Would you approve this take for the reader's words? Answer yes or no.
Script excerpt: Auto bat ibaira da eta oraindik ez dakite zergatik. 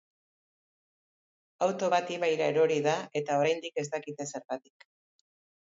no